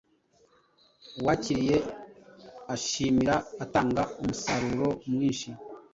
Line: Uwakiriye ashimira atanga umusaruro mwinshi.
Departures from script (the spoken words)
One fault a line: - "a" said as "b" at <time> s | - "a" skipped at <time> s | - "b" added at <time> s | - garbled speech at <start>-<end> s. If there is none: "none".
none